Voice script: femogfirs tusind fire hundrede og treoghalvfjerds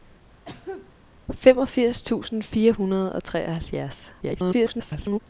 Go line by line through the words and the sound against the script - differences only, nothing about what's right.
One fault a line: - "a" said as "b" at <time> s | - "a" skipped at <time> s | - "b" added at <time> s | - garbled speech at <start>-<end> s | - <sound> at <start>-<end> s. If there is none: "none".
- cough at 0.4-0.9 s
- garbled speech at 4.2-5.2 s